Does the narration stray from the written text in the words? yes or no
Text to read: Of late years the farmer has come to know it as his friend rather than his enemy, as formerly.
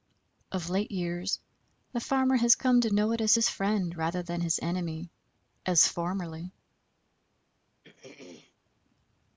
no